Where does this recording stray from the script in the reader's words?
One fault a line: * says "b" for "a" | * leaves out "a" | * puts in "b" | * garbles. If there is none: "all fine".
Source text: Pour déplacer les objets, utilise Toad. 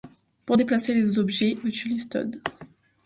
all fine